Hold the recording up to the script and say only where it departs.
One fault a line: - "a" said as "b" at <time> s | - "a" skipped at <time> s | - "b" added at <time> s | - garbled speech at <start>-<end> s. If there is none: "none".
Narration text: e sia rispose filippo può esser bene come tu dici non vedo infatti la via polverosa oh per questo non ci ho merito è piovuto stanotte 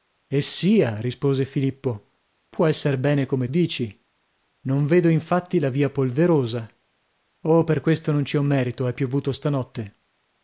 - "tu" skipped at 3.5 s